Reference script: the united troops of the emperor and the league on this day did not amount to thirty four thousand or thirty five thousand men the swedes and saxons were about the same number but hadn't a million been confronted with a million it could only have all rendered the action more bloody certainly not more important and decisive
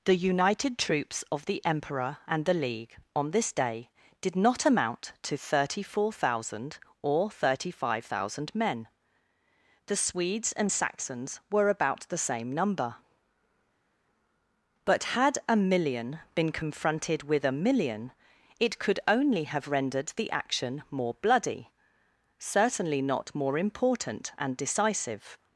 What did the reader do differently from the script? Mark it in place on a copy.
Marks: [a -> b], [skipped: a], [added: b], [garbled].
the united troops of the emperor and the league on this day did not amount to thirty four thousand or thirty five thousand men the swedes and saxons were about the same number but [hadn't -> had] a million been confronted with a million it could only have [skipped: all] rendered the action more bloody certainly not more important and decisive